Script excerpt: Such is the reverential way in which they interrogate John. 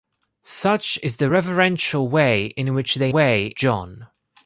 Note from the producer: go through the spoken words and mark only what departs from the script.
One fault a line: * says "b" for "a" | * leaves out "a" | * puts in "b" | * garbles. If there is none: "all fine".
* says "way" for "interrogate"